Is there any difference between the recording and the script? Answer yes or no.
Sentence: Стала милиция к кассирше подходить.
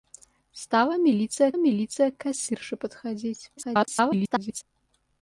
yes